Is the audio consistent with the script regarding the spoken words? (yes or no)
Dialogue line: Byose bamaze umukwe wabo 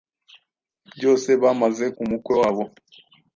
yes